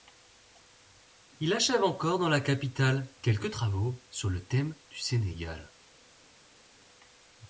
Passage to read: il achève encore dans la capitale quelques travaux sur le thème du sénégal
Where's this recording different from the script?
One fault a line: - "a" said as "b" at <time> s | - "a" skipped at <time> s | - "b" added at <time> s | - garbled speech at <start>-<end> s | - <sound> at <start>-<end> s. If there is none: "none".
none